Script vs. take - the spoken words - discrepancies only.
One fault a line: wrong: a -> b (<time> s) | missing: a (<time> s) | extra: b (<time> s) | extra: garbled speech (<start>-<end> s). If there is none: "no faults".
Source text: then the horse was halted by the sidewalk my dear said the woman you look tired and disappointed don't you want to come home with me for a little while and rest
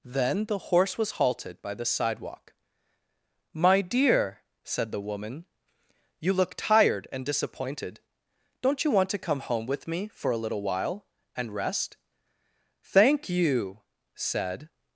extra: thank you said (12.8 s)